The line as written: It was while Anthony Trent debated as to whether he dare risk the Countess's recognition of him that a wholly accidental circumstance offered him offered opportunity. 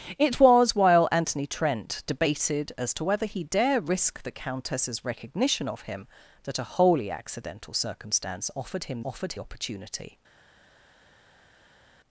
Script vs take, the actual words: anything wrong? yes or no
no